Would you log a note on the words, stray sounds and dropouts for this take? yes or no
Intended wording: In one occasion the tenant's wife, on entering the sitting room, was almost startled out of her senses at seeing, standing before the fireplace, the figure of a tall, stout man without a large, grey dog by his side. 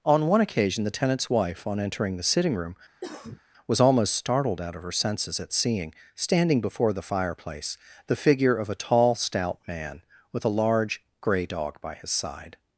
yes